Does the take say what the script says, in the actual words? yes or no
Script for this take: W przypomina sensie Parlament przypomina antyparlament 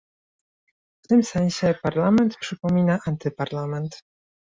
no